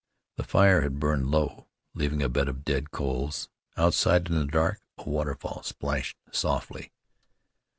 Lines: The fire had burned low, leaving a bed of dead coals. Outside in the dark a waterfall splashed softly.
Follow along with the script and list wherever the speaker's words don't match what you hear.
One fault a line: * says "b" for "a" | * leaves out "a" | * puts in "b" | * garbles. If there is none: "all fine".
all fine